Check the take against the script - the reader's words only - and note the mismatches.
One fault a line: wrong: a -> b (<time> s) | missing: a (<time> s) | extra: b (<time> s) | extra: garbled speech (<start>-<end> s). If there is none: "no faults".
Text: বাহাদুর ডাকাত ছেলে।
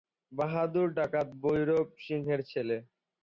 extra: ভৈরব সিংহের (1.4 s)